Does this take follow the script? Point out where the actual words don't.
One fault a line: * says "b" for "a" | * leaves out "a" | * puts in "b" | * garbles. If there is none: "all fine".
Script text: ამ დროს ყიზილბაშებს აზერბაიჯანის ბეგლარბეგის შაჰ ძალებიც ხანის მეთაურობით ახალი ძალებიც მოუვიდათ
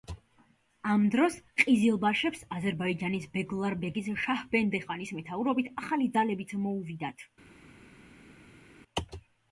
* says "ბენდე" for "ძალებიც"